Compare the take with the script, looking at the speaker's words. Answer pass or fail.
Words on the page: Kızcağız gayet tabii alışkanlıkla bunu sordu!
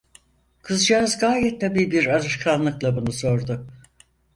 fail